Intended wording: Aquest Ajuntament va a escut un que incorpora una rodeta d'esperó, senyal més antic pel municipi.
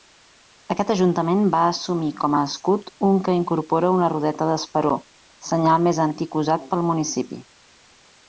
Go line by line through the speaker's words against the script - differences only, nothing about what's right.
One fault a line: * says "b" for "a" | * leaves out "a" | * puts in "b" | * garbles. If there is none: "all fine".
* puts in "assumir com"
* puts in "usat"